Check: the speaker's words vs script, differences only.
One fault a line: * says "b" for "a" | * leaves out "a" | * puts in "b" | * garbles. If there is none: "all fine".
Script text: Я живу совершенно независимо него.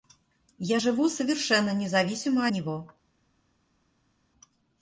all fine